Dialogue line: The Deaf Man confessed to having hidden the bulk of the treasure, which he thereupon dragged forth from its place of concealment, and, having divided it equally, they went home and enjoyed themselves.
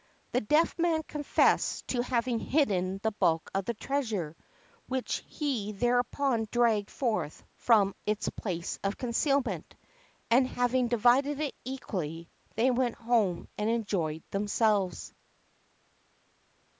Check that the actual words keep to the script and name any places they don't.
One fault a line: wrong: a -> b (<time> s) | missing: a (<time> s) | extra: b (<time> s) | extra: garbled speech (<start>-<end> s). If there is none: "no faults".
no faults